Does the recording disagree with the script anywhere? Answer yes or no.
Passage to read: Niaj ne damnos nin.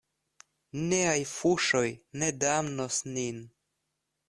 yes